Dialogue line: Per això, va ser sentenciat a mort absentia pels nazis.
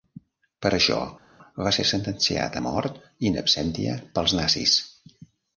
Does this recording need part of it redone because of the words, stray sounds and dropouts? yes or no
yes